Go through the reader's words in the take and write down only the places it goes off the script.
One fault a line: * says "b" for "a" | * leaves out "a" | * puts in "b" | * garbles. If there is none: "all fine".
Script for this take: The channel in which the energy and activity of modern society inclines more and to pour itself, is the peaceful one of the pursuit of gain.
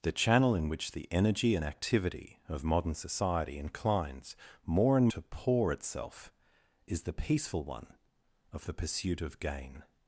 all fine